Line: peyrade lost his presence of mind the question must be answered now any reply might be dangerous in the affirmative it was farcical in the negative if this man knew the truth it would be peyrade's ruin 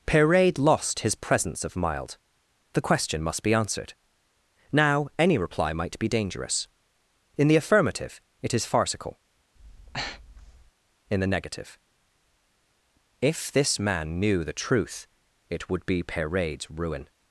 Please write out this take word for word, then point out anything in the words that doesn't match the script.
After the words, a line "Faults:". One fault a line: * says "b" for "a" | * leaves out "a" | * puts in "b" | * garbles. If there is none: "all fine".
peyrade lost his presence of mild the question must be answered now any reply might be dangerous in the affirmative it is farcical in the negative if this man knew the truth it would be peyrade's ruin
Faults:
* says "mild" for "mind"
* says "is" for "was"